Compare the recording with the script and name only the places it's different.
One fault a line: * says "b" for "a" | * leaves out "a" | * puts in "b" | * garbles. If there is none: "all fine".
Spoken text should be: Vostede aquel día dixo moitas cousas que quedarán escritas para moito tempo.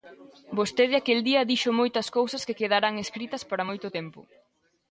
all fine